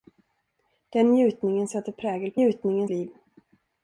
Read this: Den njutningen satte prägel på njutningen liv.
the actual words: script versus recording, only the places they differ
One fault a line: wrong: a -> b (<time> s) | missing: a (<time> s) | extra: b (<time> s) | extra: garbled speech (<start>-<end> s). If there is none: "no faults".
no faults